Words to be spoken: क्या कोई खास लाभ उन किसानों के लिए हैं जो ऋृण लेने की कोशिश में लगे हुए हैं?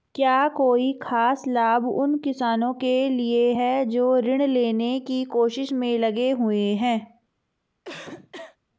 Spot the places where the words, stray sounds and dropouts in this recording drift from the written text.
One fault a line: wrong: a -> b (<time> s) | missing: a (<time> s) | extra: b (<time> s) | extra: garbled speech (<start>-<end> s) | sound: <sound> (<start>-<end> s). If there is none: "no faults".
sound: cough (7.8-8.6 s)